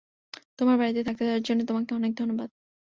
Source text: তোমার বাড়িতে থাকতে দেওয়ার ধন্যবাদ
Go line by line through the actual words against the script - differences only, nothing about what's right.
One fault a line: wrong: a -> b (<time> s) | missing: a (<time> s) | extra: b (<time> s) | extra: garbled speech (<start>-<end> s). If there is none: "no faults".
extra: জন্য তোমাকে অনেক (1.4 s)